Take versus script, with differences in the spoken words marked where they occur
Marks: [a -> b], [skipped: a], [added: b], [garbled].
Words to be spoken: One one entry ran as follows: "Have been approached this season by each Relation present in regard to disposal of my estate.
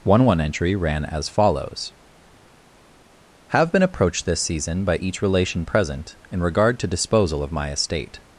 One one entry ran as follows: "Have been approached this season by each Relation present in regard to disposal of my estate.